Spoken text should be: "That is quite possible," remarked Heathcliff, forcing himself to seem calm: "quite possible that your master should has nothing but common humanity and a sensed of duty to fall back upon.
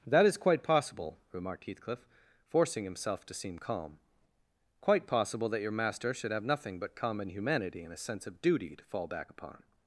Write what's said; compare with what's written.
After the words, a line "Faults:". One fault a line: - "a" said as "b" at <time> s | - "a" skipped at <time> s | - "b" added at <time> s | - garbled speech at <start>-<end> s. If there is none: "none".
"That is quite possible," remarked Heathcliff, forcing himself to seem calm: "quite possible that your master should have nothing but common humanity and a sense of duty to fall back upon.
Faults:
- "has" said as "have" at 6.3 s
- "sensed" said as "sense" at 8.0 s